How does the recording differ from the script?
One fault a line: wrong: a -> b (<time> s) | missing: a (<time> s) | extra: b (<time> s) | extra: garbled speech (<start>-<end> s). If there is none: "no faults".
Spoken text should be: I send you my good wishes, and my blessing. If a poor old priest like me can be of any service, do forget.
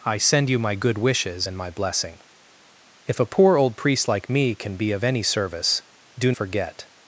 no faults